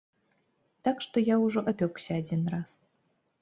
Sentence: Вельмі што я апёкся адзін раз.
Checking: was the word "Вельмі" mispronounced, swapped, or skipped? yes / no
yes